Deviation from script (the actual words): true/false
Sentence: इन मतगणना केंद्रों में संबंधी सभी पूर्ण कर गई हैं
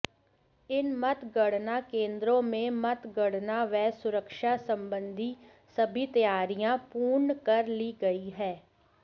true